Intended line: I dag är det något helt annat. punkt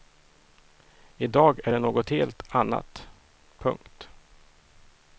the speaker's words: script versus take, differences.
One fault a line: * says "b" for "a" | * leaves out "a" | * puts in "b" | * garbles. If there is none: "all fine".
all fine